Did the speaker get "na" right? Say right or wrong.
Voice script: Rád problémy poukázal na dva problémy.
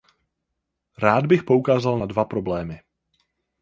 right